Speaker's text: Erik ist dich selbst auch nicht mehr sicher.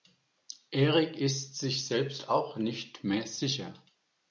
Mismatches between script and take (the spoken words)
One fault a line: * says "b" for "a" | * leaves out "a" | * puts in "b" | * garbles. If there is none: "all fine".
* says "sich" for "dich"